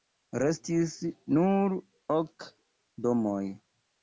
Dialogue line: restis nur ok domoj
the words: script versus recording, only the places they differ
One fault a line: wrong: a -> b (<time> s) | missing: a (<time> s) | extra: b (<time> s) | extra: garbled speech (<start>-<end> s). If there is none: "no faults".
no faults